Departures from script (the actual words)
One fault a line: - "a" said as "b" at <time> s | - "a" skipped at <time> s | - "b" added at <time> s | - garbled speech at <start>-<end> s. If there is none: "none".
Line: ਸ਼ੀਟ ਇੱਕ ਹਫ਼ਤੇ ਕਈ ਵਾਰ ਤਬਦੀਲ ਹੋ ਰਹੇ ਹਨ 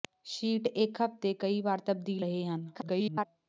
- "ਹੋ" skipped at 2.2 s
- garbled speech at 2.7-3.3 s